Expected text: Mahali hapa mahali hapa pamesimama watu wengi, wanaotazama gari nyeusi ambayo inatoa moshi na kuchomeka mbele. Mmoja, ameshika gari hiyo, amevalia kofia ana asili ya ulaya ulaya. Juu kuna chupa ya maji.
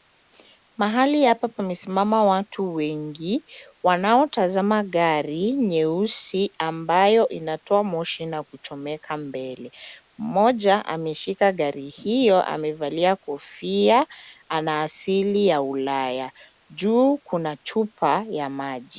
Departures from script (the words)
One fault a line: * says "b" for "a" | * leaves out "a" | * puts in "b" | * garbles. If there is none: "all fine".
* leaves out "mahali hapa"
* leaves out "ulaya"